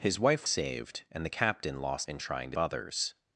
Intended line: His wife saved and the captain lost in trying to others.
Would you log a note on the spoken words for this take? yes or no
no